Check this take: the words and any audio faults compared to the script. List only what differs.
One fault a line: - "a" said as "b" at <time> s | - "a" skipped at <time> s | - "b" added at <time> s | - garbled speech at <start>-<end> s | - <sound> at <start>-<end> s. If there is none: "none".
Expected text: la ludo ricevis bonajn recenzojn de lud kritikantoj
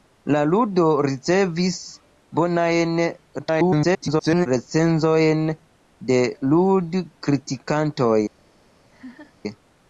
- garbled speech at 3.4-4.5 s
- laugh at 8.9-9.4 s